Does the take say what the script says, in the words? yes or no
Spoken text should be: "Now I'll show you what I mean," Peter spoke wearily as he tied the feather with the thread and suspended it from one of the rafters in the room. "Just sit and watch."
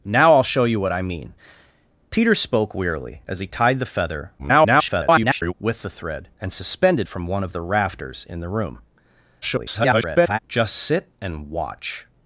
no